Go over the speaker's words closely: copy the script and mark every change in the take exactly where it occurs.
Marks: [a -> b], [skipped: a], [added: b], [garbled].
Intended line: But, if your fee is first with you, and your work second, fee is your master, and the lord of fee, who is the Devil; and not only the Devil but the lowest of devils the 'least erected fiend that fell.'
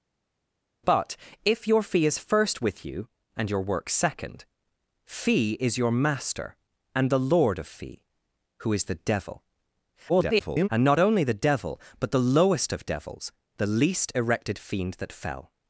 But, if your fee is first with you, and your work second, fee is your master, and the lord of fee, who is the Devil; [garbled] and not only the Devil but the lowest of devils the 'least erected fiend that fell.'